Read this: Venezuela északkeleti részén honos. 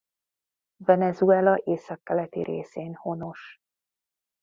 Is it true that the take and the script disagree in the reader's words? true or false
false